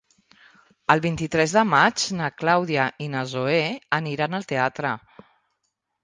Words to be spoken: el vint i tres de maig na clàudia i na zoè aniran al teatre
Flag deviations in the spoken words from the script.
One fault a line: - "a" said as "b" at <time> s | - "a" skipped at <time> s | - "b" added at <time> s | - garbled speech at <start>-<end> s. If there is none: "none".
none